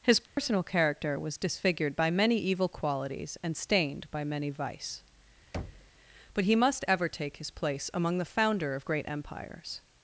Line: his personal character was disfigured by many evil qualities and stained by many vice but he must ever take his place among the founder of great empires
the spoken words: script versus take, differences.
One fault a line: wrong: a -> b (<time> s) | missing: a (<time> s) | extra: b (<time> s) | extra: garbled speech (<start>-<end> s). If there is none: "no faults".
no faults